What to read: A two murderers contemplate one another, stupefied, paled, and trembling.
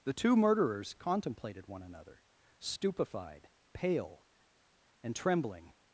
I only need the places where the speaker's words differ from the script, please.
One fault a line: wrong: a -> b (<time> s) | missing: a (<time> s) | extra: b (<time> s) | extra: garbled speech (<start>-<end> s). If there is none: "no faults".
wrong: A -> The (0.0 s)
wrong: contemplate -> contemplated (0.9 s)
wrong: paled -> pale (3.7 s)